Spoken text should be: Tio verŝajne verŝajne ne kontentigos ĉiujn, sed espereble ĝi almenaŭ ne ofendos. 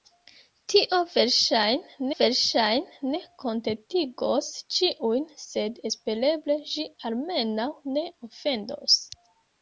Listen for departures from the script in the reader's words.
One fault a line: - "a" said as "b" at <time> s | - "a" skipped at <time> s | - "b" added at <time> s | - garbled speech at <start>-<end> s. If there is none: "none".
none